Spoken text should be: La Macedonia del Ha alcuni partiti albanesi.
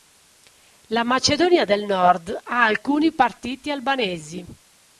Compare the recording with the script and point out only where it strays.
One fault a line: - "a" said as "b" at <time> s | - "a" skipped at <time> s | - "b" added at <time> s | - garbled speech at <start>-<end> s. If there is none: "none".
- "Nord" added at 1.9 s